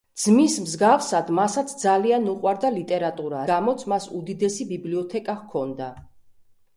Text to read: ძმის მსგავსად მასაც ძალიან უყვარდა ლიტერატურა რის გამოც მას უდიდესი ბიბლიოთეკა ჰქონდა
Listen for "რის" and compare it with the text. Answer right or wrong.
wrong